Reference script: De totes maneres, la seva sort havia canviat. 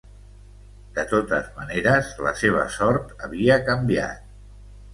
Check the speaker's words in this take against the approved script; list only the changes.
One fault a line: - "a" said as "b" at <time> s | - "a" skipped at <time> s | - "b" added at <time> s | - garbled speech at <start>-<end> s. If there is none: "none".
none